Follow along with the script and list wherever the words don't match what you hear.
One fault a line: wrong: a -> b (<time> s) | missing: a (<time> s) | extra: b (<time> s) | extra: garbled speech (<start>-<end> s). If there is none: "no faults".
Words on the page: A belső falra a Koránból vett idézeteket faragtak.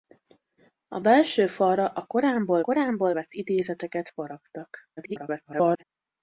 extra: Koránból (2.6 s)
extra: garbled speech (5.0-5.8 s)